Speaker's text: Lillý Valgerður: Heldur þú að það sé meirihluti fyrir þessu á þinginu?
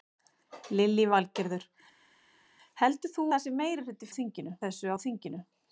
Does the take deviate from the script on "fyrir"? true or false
true